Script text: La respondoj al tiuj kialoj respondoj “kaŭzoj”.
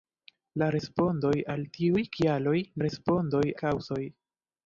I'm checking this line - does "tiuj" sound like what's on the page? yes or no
yes